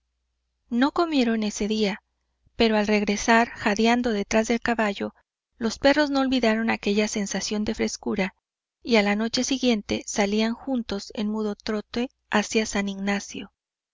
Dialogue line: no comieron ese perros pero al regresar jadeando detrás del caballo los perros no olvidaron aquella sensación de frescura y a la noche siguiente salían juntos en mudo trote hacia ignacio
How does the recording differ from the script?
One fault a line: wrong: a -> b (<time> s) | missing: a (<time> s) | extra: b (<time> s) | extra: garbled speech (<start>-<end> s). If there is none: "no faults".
wrong: perros -> día (1.7 s)
extra: san (12.6 s)